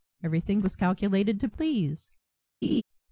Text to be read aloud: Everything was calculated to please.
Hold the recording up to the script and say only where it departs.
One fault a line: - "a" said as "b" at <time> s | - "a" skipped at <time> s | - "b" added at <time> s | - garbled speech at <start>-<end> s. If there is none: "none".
none